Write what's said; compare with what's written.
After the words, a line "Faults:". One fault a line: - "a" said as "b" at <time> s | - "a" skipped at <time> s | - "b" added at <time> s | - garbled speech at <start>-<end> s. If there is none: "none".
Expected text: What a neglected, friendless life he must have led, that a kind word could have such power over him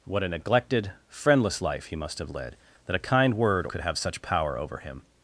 What a neglected, friendless life he must have led, that a kind word could have such power over him
Faults:
none